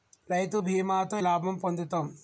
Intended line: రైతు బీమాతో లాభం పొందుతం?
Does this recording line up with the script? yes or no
yes